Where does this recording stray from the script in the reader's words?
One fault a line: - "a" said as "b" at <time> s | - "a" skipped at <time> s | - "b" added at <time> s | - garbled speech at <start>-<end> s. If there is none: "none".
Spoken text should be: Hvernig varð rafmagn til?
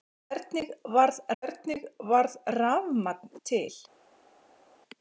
- "hvernig varð" added at 1.4 s